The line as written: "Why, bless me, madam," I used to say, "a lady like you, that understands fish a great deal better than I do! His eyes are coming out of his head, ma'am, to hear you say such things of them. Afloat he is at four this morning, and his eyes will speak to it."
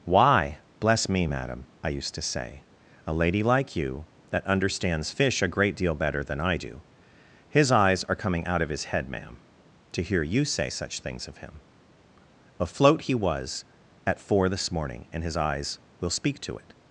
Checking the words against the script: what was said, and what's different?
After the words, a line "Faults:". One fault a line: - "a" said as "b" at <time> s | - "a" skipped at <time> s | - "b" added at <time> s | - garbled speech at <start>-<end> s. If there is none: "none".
"Why, bless me, madam," I used to say, "a lady like you, that understands fish a great deal better than I do! His eyes are coming out of his head, ma'am, to hear you say such things of him. Afloat he was at four this morning, and his eyes will speak to it."
Faults:
- "them" said as "him" at 11.4 s
- "is" said as "was" at 13.1 s